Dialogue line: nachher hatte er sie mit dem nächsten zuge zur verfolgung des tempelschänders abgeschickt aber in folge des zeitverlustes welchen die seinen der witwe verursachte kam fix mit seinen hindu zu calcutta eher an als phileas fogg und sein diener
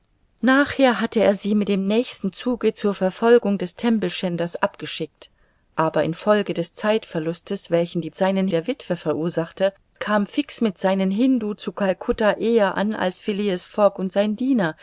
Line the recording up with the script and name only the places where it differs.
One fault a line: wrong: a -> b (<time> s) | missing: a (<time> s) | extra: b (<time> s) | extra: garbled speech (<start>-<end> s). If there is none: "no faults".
no faults